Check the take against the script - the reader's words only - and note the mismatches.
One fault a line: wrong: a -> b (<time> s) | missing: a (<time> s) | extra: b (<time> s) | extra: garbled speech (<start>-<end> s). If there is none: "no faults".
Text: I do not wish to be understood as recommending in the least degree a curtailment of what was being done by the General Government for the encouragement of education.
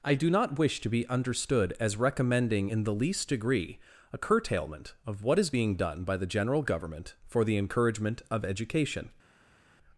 wrong: was -> is (5.4 s)